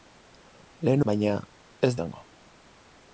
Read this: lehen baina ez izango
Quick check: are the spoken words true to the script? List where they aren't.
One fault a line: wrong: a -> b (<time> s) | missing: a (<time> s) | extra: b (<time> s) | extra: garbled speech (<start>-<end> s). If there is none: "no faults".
no faults